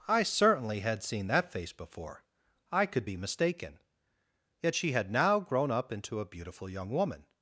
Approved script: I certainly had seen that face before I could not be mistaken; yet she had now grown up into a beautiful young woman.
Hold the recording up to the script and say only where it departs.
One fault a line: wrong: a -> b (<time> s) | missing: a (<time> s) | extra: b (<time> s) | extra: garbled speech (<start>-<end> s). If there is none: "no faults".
missing: not (3.0 s)